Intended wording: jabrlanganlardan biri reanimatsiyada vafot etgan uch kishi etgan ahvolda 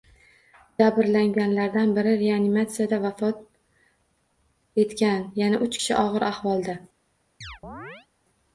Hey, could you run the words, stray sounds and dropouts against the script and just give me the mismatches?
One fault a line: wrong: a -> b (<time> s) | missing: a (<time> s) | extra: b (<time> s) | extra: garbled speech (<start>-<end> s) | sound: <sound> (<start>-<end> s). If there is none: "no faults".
extra: yana (5.5 s)
wrong: etgan -> og‘ir (6.1 s)
sound: chirp (7.4-8.1 s)